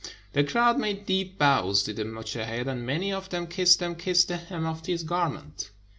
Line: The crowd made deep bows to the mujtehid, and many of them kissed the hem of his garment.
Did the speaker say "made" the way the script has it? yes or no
yes